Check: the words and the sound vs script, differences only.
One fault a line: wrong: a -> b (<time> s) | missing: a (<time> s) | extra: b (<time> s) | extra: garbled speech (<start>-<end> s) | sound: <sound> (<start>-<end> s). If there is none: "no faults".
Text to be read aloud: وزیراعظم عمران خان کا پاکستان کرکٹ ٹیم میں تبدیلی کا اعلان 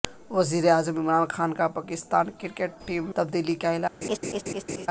missing: میں (3.1 s)
sound: laugh (4.0-4.9 s)